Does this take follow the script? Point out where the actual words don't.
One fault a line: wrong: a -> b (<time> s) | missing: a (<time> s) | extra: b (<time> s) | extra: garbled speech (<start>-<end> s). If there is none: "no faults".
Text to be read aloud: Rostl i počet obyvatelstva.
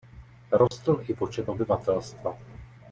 no faults